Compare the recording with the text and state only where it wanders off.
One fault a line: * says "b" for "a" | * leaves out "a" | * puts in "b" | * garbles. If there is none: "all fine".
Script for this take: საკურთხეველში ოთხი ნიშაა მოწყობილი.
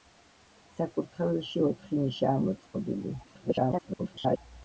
* garbles